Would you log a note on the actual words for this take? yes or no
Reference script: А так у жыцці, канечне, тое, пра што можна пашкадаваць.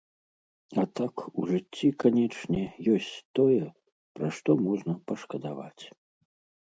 yes